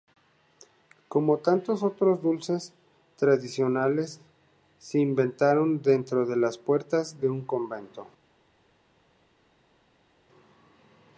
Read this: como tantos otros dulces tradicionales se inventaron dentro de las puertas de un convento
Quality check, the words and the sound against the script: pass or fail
pass